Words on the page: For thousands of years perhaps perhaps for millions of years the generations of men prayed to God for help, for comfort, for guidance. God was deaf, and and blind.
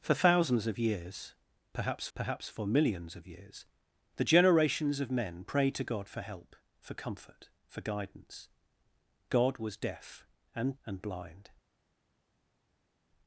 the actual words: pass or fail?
pass